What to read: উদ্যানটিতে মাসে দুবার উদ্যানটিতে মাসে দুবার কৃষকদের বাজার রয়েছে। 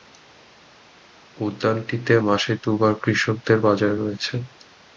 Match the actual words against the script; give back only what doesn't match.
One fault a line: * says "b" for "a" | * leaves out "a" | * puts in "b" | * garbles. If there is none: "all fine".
* leaves out "উদ্যানটিতে মাসে দুবার"